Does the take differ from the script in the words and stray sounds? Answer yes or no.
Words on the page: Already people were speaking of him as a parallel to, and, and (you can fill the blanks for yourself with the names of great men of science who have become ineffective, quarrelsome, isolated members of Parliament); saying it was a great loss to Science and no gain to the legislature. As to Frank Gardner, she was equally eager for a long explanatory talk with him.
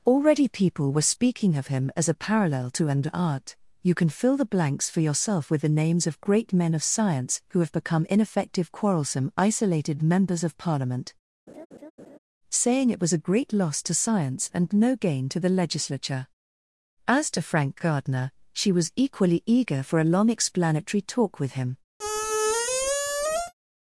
yes